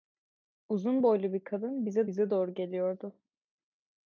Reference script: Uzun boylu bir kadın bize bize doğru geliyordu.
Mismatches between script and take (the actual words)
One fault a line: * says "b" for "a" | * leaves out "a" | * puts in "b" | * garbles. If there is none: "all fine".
all fine